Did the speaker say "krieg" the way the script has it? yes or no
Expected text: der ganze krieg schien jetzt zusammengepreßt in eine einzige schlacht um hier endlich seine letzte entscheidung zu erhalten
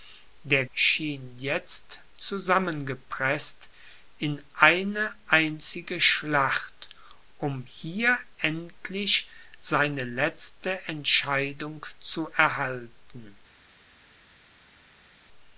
no